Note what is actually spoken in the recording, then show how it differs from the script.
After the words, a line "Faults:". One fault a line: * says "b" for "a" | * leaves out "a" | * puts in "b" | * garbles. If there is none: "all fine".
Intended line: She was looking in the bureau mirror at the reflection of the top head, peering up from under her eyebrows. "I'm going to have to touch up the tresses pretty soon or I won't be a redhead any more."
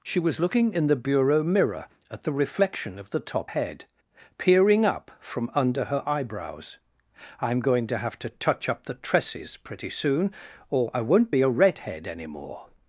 She was looking in the bureau mirror at the reflection of the top head, peering up from under her eyebrows. "I'm going to have to touch up the tresses pretty soon or I won't be a redhead any more."
Faults:
all fine